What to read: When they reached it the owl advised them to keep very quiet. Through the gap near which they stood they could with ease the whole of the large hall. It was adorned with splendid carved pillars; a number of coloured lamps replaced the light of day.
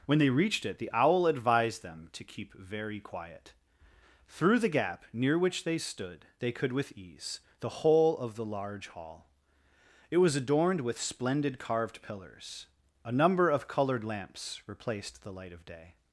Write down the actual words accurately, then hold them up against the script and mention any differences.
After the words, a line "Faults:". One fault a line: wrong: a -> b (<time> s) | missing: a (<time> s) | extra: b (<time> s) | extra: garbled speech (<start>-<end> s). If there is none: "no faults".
When they reached it the owl advised them to keep very quiet. Through the gap near which they stood they could with ease the whole of the large hall. It was adorned with splendid carved pillars; a number of coloured lamps replaced the light of day.
Faults:
no faults